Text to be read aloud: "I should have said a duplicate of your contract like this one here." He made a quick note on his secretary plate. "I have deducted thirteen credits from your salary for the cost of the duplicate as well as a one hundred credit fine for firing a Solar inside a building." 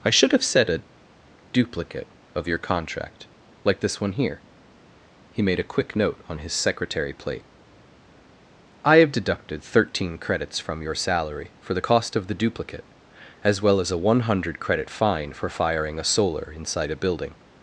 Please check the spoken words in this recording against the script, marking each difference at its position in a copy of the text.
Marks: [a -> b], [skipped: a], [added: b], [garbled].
"I should have said a duplicate of your contract like this one here." He made a quick note on his secretary plate. "I have deducted thirteen credits from your salary for the cost of the duplicate as well as a one hundred credit fine for firing a Solar inside a building."